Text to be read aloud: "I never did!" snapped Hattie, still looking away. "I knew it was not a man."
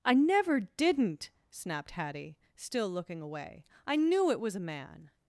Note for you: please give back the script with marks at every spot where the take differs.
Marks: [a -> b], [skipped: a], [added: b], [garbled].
"I never [did!" -> didn't] snapped Hattie, still looking away. "I knew it was [skipped: not] a man."